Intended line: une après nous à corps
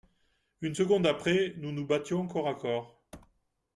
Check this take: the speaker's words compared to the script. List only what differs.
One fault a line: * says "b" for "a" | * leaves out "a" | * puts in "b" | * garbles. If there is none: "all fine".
* puts in "seconde"
* puts in "nous battions corps"